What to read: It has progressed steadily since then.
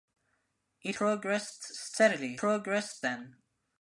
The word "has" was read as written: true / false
false